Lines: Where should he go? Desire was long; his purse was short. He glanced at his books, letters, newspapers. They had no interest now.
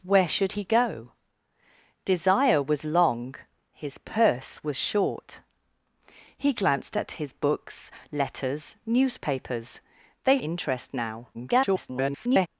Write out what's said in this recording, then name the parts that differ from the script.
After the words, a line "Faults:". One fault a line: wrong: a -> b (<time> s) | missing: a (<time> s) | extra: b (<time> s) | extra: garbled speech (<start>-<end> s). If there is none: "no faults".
Where should he go? Desire was long; his purse was short. He glanced at his books, letters, newspapers. They interest now. [garbled]
Faults:
missing: had no (10.4 s)
extra: garbled speech (11.3-12.5 s)